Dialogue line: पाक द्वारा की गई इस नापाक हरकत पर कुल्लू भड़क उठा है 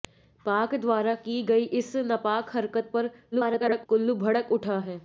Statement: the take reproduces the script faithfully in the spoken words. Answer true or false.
false